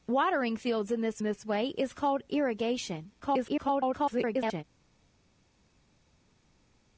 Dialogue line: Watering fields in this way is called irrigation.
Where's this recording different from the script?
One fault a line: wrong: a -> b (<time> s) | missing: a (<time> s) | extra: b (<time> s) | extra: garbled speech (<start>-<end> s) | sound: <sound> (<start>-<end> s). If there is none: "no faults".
extra: this (1.2 s)
extra: garbled speech (3.2-4.6 s)